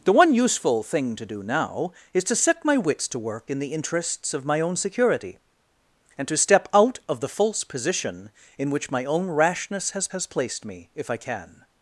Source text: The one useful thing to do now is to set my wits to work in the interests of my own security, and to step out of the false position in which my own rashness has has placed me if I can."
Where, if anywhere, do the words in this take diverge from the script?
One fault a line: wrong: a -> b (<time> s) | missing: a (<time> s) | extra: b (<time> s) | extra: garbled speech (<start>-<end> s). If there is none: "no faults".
no faults